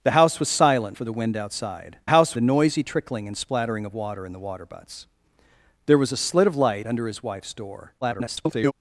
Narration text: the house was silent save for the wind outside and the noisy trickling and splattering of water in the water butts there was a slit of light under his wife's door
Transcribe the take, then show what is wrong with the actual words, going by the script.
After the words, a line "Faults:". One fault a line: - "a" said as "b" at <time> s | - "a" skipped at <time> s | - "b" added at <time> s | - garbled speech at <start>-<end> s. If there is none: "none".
the house was silent for the wind outside house the noisy trickling and splattering of water in the water butts there was a slit of light under his wife's door [garbled]
Faults:
- "save" skipped at 1.0 s
- "and" said as "house" at 2.1 s
- garbled speech at 8.0-8.7 s